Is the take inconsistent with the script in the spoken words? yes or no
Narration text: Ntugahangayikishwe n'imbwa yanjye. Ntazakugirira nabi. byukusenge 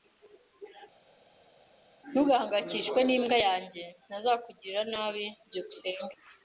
no